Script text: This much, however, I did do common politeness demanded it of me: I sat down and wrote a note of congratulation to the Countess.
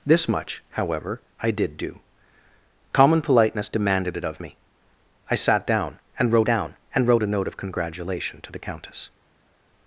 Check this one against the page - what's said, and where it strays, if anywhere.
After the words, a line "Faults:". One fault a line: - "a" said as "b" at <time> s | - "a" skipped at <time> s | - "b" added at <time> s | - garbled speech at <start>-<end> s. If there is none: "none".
This much, however, I did do common politeness demanded it of me: I sat down and wrote down and wrote a note of congratulation to the Countess.
Faults:
- "down and wrote" added at 6.5 s